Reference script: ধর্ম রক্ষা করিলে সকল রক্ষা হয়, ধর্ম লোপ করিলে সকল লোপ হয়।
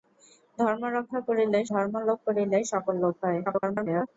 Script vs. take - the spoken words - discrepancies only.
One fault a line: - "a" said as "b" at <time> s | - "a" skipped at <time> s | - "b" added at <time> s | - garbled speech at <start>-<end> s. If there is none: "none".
- "সকল রক্ষা হয়" skipped at 1.6 s
- garbled speech at 3.4-4.1 s